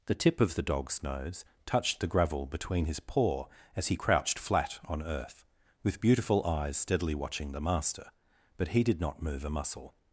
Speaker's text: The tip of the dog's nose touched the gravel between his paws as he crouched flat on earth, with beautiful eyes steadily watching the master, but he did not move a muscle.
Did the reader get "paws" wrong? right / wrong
wrong